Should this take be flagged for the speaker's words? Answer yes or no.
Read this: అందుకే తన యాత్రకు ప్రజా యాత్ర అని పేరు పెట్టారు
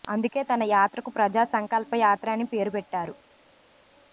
yes